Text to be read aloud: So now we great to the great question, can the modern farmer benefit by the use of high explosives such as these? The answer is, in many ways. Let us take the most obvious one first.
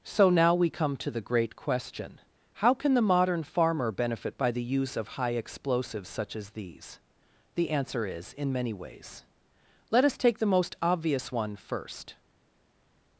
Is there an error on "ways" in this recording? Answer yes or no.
no